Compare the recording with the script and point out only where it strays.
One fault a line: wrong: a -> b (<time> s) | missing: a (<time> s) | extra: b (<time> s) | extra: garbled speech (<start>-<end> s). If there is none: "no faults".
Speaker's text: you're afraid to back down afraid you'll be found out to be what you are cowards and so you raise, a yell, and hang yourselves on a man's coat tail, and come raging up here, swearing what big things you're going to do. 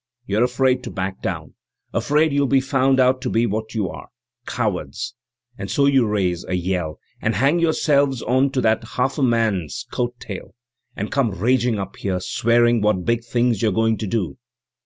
extra: to that half (8.5 s)